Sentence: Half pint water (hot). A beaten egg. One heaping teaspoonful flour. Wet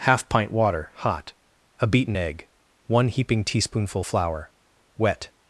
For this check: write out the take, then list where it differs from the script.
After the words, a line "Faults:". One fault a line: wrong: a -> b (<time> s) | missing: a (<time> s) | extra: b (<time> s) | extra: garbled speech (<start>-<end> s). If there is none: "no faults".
Half pint water (hot). A beaten egg. One heaping teaspoonful flour. Wet
Faults:
no faults